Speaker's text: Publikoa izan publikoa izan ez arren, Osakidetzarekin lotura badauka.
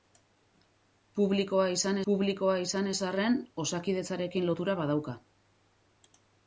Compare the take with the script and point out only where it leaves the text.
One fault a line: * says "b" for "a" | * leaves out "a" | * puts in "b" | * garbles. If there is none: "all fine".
all fine